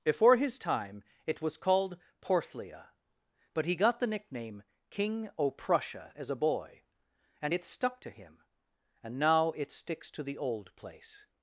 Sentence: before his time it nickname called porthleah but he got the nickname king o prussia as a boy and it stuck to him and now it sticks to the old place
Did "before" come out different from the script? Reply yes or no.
no